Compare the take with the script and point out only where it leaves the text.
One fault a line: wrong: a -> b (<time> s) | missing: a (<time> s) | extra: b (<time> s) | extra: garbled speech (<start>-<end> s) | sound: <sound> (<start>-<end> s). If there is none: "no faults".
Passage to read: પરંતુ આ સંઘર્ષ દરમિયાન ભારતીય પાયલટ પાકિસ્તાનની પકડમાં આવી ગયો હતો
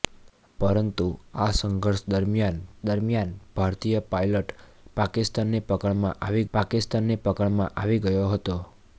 extra: દરમિયાન (2.8 s)
extra: પાકિસ્તાનની પકડમાં આવી (6.5 s)